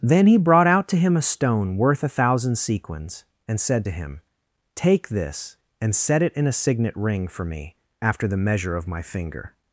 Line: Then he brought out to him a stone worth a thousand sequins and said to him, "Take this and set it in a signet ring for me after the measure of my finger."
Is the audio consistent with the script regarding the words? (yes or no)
yes